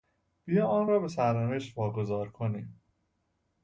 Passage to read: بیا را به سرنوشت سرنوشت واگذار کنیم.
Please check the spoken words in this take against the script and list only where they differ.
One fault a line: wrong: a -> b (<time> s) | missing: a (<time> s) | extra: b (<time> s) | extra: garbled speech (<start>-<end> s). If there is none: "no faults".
extra: آن (0.7 s)
missing: سرنوشت (1.8 s)